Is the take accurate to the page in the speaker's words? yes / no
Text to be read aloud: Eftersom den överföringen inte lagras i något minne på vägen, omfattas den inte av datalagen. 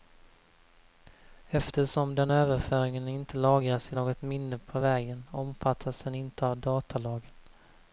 yes